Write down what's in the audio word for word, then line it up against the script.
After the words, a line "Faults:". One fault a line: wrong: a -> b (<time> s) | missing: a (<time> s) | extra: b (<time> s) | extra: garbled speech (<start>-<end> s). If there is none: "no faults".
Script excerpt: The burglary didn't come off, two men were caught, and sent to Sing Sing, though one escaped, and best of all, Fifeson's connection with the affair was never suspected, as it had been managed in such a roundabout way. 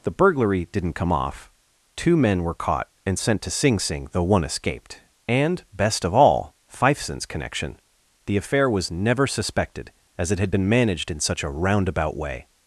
The burglary didn't come off, two men were caught, and sent to Sing Sing, though one escaped, and best of all, Fifeson's connection the affair was never suspected, as it had been managed in such a roundabout way.
Faults:
missing: with (7.8 s)